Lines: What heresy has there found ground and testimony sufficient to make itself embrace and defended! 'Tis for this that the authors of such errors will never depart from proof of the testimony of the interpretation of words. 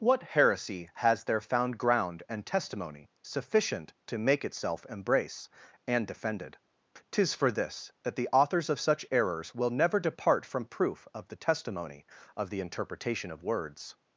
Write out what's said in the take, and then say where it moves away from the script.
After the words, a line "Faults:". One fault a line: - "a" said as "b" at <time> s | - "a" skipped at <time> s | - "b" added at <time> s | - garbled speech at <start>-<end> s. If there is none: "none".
What heresy has there found ground and testimony sufficient to make itself embrace and defended! 'Tis for this that the authors of such errors will never depart from proof of the testimony of the interpretation of words.
Faults:
none